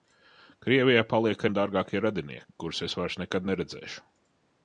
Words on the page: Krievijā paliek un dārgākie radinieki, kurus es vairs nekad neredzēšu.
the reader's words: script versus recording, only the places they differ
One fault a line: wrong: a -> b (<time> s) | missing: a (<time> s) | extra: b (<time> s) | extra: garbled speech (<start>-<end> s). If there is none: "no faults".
no faults